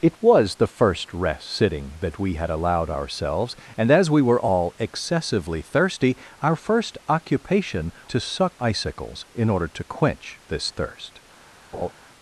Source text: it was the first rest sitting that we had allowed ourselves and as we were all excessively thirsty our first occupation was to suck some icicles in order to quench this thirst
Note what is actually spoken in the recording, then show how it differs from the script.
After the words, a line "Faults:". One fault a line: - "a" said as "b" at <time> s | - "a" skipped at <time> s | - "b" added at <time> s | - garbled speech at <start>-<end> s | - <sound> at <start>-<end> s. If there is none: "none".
it was the first rest sitting that we had allowed ourselves and as we were all excessively thirsty our first occupation to suck icicles in order to quench this thirst
Faults:
- "was" skipped at 7.9 s
- "some" skipped at 8.6 s
- laugh at 11.7-11.9 s